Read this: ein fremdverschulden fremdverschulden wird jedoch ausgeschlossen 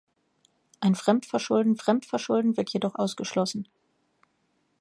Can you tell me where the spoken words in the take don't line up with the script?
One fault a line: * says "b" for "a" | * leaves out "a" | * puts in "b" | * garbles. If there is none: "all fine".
all fine